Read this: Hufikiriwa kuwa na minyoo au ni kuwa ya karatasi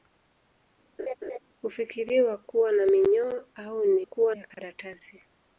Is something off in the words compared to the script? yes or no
no